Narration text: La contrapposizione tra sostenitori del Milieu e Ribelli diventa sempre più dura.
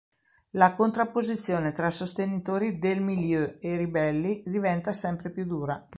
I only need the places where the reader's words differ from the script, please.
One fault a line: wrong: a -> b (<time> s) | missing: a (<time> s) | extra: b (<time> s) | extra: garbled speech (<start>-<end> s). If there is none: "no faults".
no faults